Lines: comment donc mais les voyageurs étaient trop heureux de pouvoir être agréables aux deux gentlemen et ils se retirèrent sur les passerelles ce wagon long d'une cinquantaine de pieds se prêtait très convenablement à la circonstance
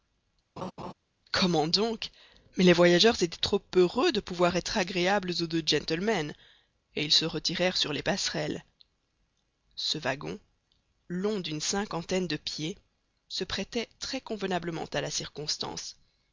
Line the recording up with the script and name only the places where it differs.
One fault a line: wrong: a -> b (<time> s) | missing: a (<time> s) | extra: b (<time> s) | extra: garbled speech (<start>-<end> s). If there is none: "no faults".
no faults